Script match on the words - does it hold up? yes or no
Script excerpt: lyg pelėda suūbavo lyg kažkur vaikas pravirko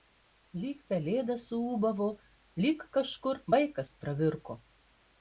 yes